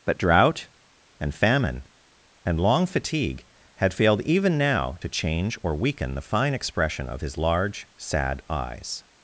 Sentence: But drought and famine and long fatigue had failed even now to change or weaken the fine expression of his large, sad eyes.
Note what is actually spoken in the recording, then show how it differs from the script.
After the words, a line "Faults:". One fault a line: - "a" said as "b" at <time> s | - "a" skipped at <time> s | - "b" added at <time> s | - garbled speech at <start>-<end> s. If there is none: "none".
But drought and famine and long fatigue had failed even now to change or weaken the fine expression of his large, sad eyes.
Faults:
none